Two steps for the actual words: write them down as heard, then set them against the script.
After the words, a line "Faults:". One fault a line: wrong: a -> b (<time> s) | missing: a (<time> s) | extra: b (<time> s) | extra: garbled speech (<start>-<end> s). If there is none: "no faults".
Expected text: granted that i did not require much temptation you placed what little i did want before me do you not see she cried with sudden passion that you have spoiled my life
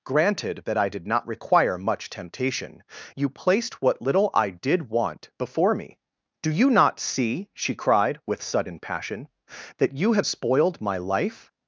granted that i did not require much temptation you placed what little i did want before me do you not see she cried with sudden passion that you have spoiled my life
Faults:
no faults